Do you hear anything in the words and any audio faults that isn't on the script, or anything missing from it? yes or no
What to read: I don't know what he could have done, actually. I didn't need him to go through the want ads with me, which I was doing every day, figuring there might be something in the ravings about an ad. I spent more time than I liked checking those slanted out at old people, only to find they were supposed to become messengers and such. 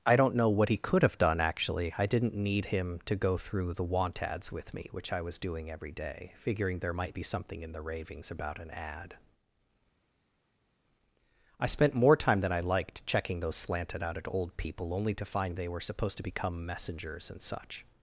no